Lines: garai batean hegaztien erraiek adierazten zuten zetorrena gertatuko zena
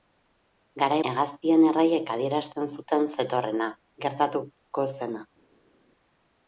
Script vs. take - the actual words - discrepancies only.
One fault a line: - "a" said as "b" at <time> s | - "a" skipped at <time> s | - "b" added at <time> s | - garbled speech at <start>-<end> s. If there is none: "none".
- "batean" skipped at 1.0 s